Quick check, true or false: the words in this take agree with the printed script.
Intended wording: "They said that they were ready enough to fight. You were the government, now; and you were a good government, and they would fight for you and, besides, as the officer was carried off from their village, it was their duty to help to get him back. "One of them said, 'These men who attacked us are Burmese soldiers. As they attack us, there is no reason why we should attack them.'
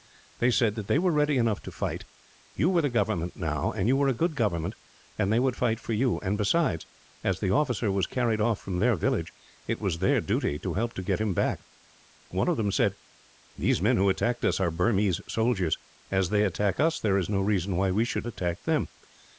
true